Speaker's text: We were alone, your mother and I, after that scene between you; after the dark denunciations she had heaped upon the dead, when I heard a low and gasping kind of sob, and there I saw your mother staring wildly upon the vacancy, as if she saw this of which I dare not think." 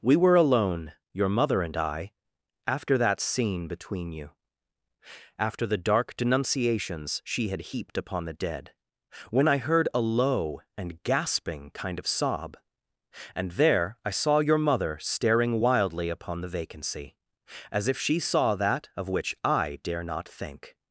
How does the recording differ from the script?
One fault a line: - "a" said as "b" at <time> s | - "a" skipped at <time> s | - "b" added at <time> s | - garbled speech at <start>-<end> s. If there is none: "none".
- "this" said as "that" at 18.5 s